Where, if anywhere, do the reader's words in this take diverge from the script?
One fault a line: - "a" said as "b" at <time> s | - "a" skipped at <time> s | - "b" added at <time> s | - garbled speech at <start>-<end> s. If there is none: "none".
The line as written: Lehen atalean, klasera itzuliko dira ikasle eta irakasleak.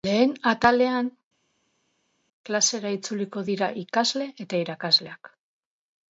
none